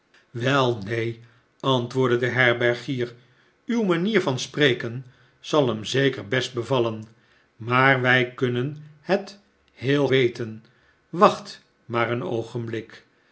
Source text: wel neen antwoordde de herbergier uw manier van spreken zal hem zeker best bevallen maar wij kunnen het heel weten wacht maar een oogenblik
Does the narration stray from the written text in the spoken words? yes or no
no